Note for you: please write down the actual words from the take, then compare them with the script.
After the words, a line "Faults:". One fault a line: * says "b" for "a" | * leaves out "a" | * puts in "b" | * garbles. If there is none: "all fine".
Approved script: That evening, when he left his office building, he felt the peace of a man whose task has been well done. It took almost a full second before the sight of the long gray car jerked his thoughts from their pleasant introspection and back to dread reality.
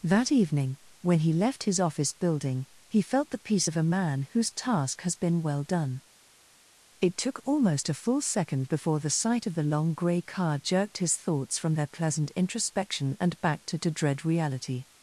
That evening, when he left his office building, he felt the peace of a man whose task has been well done. It took almost a full second before the sight of the long gray car jerked his thoughts from their pleasant introspection and back to to dread reality.
Faults:
* puts in "to"